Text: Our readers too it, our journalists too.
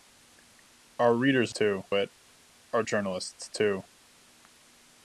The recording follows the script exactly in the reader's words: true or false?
true